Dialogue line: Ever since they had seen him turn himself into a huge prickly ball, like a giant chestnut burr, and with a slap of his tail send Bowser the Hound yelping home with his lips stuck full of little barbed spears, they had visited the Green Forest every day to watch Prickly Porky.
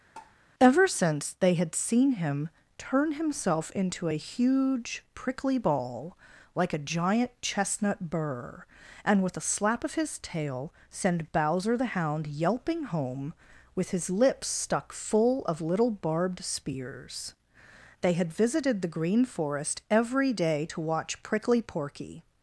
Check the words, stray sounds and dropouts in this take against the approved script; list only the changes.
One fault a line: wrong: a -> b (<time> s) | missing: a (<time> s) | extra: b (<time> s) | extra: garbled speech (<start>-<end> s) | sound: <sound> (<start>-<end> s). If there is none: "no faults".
sound: tap (0.2-0.4 s)